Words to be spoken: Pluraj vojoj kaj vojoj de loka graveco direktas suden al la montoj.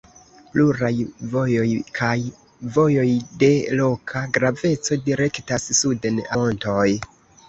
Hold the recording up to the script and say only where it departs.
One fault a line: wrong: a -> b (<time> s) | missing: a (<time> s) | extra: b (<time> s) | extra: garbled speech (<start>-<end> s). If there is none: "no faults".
missing: al la (6.2 s)